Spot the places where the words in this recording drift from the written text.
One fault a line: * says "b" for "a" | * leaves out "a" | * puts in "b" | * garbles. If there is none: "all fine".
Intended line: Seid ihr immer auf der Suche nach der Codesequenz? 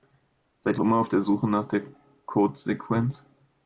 all fine